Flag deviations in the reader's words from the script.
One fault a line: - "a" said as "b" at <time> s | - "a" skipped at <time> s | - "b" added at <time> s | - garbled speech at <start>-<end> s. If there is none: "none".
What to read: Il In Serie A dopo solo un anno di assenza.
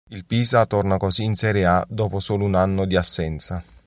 - "Pisa torna così" added at 0.2 s